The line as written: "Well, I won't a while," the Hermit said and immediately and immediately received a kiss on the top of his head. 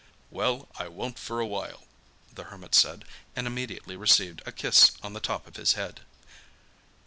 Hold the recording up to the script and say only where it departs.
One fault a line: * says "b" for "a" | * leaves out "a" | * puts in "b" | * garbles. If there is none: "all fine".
* puts in "for"
* leaves out "and immediately"